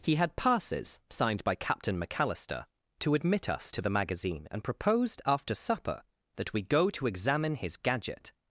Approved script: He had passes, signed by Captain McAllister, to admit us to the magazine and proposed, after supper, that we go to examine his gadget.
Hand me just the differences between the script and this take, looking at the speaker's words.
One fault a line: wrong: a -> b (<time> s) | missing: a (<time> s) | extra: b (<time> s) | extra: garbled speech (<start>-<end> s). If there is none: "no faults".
no faults